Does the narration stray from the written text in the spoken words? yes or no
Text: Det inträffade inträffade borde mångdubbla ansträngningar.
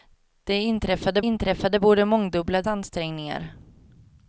no